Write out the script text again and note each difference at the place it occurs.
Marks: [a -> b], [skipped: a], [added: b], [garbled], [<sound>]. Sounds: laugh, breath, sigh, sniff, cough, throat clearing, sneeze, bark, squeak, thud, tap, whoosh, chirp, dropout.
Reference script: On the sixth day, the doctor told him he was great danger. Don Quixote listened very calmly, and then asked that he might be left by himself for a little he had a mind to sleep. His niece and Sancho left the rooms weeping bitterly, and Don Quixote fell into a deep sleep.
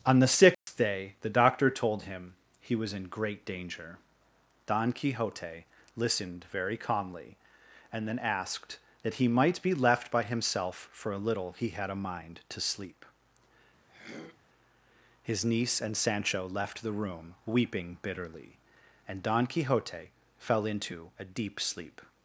On the sixth [dropout] day, the doctor told him he was [added: in] great danger. Don Quixote listened very calmly, and then asked that he might be left by himself for a little he had a mind to sleep. [throat clearing] His niece and Sancho left the [rooms -> room] weeping bitterly, and Don Quixote fell into a deep sleep.